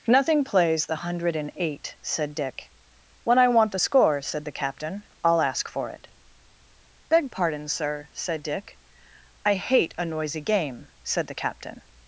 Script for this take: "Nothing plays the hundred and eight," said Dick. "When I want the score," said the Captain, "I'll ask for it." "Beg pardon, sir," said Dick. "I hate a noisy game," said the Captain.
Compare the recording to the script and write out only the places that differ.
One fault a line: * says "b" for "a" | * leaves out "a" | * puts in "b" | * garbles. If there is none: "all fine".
all fine